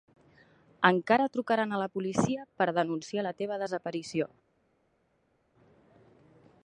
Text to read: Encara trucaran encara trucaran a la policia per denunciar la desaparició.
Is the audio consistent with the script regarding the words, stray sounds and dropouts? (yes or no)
no